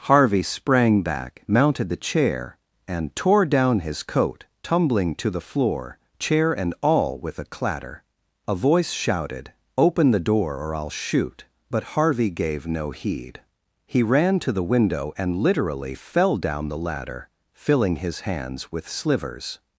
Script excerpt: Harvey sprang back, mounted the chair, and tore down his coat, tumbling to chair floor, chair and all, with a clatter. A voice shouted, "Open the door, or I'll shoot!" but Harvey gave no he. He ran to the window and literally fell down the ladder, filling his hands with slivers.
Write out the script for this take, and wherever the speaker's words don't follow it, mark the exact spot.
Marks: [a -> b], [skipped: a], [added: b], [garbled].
Harvey sprang back, mounted the chair, and tore down his coat, tumbling to [chair -> the] floor, chair and all, with a clatter. A voice shouted, "Open the door, or I'll shoot!" but Harvey gave no [he. -> heed] He ran to the window and literally fell down the ladder, filling his hands with slivers.